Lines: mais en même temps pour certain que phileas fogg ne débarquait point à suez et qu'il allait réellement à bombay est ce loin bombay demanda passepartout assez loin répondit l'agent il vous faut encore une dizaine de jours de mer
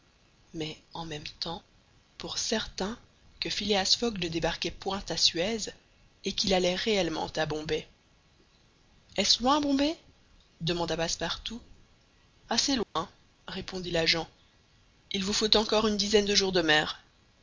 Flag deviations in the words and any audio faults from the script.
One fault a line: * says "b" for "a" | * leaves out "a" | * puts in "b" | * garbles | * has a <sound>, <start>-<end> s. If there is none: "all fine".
* has a dropout, 12.8-13.0 s